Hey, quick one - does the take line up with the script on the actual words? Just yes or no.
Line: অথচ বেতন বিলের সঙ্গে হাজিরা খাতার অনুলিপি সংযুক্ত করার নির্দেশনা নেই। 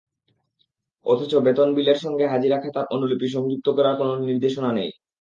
no